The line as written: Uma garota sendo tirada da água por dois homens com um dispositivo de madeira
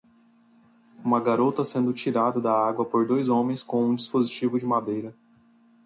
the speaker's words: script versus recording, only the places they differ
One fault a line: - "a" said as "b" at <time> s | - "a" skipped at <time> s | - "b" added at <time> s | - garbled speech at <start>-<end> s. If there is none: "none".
none